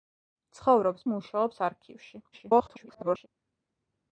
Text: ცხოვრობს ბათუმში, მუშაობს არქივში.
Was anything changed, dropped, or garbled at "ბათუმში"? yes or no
yes